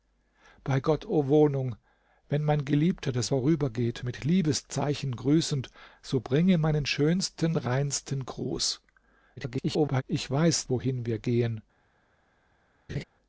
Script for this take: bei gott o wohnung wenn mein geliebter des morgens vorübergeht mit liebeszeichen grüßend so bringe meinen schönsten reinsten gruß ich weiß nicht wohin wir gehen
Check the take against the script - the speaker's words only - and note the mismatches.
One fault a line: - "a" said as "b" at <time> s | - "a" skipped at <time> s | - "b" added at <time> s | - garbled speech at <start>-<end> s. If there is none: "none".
- "morgens" skipped at 3.3 s
- garbled speech at 9.4-10.0 s
- "nicht" skipped at 10.7 s